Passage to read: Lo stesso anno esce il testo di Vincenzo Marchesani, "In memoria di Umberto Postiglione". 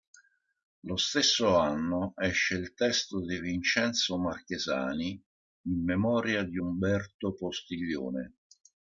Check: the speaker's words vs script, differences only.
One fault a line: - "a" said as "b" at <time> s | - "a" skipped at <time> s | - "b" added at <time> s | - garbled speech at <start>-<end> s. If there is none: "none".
none